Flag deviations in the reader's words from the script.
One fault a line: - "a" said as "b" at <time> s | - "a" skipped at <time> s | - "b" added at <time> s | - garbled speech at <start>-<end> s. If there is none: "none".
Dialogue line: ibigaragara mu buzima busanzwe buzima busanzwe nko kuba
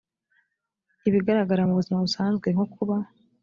- "buzima busanzwe" skipped at 2.5 s